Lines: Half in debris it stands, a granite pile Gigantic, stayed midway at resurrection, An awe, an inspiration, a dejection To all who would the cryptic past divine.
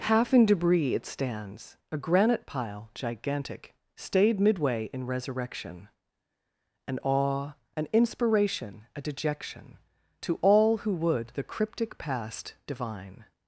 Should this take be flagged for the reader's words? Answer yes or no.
yes